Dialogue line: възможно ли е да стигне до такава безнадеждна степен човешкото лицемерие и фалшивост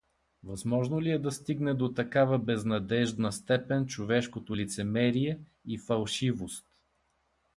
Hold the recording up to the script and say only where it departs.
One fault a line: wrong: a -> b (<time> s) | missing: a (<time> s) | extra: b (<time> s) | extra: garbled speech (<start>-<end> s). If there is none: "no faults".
no faults